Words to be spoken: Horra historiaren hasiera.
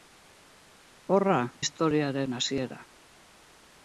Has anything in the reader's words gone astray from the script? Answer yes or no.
no